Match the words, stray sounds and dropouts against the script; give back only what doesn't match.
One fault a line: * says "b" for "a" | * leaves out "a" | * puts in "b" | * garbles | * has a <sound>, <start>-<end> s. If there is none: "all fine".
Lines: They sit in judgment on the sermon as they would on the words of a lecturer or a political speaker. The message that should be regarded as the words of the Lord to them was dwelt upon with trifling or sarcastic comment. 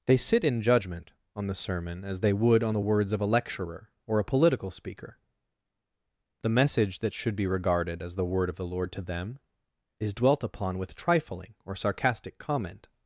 * says "word" for "words"
* says "is" for "was"